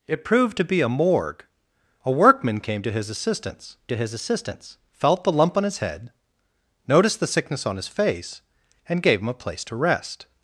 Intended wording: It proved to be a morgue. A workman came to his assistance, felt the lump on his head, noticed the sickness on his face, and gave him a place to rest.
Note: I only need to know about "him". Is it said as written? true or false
true